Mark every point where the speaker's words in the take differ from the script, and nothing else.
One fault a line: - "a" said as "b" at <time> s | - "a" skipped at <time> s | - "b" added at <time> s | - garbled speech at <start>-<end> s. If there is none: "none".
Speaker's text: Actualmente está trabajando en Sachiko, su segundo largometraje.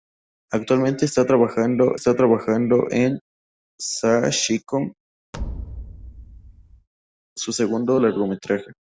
- "está trabajando" added at 1.9 s